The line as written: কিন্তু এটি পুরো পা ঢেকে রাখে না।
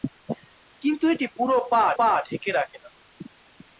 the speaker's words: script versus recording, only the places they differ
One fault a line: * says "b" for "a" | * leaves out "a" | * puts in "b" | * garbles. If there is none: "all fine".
* puts in "পা"